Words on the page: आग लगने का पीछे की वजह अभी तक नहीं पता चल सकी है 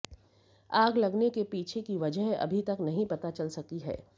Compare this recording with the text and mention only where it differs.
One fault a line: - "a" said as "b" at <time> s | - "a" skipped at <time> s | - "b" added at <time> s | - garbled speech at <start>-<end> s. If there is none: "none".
- "का" said as "के" at 1.3 s